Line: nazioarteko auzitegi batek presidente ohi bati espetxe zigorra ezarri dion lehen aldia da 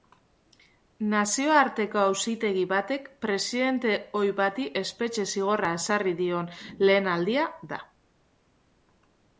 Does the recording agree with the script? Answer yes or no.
yes